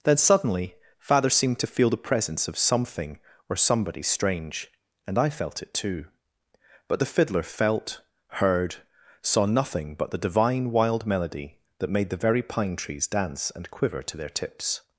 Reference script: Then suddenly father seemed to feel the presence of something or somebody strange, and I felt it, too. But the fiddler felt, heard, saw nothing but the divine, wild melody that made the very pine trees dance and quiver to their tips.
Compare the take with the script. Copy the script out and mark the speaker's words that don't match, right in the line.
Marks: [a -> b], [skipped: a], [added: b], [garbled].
Then suddenly father seemed to feel the presence of something or somebody strange, and I felt it, too. But the fiddler felt, heard, saw nothing but the divine, wild melody that made the very pine trees dance and quiver to their tips.